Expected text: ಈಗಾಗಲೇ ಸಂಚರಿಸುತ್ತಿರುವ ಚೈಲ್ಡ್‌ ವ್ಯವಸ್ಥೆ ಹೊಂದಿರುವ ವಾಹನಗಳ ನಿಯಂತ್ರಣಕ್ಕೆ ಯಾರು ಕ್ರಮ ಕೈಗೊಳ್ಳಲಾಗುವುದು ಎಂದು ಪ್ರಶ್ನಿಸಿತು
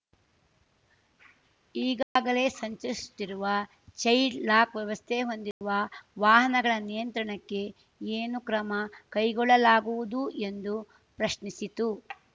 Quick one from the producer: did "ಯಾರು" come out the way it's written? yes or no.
no